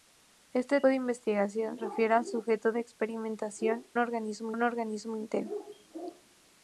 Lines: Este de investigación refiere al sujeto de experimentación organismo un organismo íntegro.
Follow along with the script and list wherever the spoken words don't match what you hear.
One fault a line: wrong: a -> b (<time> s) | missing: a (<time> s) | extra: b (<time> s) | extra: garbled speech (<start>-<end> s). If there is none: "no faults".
no faults